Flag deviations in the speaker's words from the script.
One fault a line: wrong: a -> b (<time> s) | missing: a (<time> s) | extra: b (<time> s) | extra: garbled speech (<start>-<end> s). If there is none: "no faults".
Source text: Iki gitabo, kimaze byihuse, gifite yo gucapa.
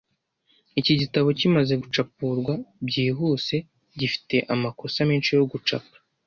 extra: gucapurwa (1.8 s)
extra: amakosa menshi (4.5 s)